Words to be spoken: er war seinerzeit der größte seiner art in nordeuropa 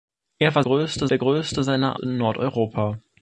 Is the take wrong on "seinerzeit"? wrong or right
wrong